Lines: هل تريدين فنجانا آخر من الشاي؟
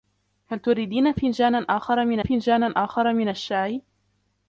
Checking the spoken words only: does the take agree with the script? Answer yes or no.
no